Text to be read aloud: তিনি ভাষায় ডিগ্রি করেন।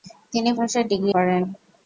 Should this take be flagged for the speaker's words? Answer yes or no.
no